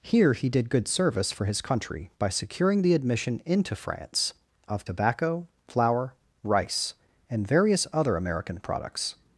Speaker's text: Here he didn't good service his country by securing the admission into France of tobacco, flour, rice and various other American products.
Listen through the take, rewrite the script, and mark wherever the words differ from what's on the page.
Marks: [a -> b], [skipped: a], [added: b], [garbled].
Here he [didn't -> did] good service [added: for] his country by securing the admission into France of tobacco, flour, rice and various other American products.